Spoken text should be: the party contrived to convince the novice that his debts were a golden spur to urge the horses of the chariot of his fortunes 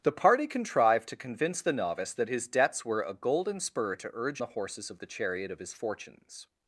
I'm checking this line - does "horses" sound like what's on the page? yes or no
yes